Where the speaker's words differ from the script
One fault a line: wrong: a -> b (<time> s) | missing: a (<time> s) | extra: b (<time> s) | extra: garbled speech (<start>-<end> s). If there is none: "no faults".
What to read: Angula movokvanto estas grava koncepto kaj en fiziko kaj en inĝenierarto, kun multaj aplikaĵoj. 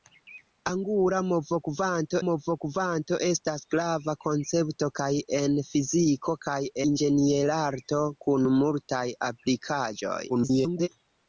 extra: movokvanto (2.3 s)
missing: en (6.6 s)
extra: garbled speech (10.3-10.9 s)